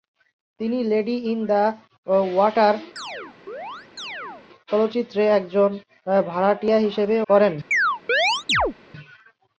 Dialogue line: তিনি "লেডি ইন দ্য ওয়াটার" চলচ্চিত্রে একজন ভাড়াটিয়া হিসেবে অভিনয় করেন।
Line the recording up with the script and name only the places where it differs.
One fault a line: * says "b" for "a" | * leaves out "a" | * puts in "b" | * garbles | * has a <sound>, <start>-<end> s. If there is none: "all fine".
* has a chirp, 3.0-4.5 s
* leaves out "অভিনয়"
* has a chirp, 7.7-8.7 s